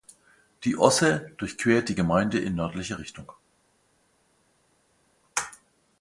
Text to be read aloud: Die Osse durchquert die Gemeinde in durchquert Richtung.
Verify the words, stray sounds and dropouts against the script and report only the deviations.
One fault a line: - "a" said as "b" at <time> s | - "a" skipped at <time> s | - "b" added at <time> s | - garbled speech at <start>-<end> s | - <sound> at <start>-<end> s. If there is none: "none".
- "durchquert" said as "nördlicher" at 2.5 s